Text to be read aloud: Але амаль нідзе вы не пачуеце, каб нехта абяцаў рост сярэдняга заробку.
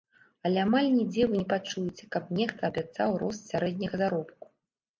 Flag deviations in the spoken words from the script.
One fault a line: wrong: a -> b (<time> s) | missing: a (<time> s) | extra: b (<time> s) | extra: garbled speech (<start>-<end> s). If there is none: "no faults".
no faults